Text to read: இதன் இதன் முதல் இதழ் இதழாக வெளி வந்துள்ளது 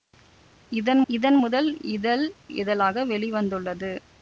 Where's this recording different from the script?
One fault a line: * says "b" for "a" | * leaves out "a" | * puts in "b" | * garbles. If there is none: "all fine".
all fine